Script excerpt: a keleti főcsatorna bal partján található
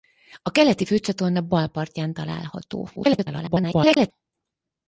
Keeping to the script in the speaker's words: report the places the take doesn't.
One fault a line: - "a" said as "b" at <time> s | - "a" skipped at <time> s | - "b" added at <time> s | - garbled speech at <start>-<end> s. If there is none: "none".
- garbled speech at 3.0-4.1 s